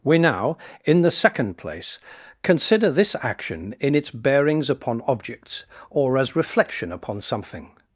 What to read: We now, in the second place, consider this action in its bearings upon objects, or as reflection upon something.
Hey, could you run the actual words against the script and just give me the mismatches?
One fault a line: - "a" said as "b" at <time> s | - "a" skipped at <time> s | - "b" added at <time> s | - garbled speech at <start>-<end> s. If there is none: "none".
none